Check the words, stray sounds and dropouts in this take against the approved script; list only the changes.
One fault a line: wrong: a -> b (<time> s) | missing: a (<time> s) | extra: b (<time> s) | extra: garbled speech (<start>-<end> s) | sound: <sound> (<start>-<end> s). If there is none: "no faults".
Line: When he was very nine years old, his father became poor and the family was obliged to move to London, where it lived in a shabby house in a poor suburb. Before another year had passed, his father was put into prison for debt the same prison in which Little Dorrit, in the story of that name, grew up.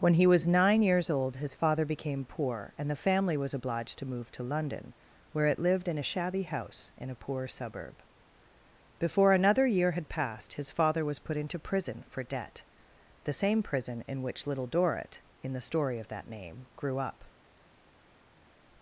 missing: very (0.5 s)